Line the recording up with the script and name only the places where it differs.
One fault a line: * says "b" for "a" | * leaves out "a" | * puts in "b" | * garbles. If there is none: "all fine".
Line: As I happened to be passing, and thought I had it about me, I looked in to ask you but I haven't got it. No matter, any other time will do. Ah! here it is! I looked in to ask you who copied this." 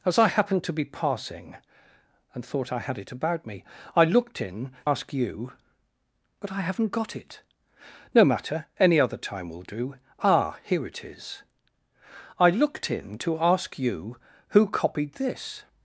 * leaves out "to"